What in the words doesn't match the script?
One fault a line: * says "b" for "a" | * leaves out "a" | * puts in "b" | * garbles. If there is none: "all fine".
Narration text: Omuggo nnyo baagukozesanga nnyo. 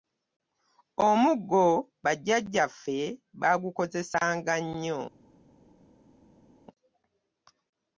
* says "bajjajjaffe" for "nnyo"